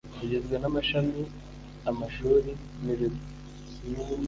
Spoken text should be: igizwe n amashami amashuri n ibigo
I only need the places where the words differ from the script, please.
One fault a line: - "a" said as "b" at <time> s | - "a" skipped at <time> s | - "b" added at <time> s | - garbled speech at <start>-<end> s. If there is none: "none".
none